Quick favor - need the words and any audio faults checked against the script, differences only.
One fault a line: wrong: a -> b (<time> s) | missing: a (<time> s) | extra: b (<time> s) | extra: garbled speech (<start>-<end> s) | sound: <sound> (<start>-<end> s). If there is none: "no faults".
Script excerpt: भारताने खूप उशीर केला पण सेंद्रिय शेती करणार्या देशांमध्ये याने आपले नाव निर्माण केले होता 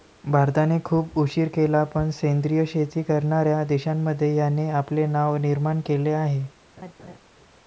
wrong: होता -> आहे (6.1 s)
sound: laugh (6.8-7.2 s)